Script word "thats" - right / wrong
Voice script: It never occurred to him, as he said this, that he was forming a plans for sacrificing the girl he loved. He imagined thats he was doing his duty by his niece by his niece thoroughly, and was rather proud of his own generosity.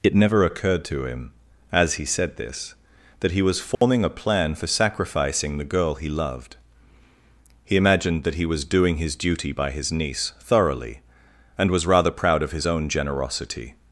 wrong